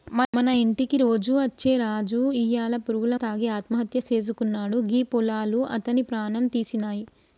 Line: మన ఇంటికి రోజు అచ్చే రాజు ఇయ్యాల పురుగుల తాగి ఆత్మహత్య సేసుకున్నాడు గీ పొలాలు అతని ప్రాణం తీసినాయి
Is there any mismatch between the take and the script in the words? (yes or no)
no